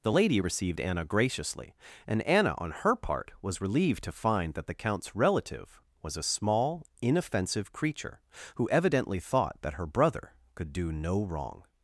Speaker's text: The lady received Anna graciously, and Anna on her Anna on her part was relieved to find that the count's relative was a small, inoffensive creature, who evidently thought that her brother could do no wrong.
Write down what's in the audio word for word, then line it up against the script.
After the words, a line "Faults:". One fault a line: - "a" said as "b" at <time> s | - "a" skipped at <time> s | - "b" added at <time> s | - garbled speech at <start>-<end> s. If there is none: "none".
The lady received Anna graciously, and Anna on her part was relieved to find that the count's relative was a small, inoffensive creature, who evidently thought that her brother could do no wrong.
Faults:
- "Anna on her" skipped at 3.0 s